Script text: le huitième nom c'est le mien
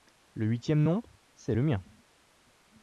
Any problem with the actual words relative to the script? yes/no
no